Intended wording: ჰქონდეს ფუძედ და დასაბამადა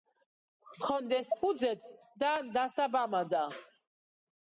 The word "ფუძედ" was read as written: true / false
true